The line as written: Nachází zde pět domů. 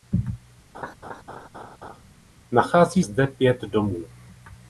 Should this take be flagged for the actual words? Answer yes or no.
no